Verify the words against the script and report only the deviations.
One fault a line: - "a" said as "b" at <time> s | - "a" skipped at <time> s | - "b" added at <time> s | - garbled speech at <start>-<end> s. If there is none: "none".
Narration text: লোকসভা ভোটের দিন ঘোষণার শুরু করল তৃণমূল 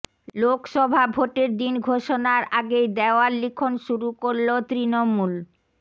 - "আগেই দেওয়াল লিখন" added at 2.6 s